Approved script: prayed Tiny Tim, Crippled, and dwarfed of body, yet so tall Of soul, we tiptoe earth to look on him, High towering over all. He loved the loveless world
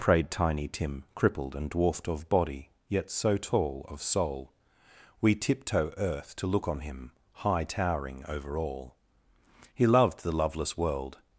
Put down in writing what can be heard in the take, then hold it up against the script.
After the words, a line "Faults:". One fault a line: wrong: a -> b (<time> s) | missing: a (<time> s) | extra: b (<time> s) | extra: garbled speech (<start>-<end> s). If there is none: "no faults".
prayed Tiny Tim, Crippled, and dwarfed of body, yet so tall Of soul, we tiptoe earth to look on him, High towering over all. He loved the loveless world
Faults:
no faults